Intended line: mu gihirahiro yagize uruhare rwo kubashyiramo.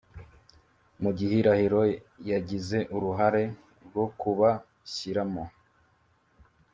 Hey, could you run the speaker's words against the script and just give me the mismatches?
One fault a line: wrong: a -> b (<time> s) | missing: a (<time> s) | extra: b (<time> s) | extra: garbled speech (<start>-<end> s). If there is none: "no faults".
no faults